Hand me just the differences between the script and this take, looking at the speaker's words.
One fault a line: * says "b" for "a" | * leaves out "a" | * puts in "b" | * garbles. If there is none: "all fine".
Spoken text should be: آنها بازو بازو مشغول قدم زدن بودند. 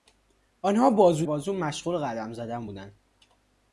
all fine